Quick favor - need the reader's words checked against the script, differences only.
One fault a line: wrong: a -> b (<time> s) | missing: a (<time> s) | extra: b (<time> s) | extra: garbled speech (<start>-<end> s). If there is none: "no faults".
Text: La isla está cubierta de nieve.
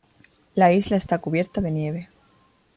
no faults